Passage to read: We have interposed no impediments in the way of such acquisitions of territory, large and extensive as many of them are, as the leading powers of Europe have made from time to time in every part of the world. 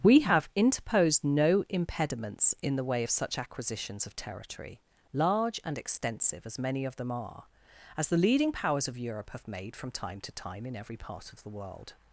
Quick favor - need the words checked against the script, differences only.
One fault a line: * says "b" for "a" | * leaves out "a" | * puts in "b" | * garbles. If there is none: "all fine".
all fine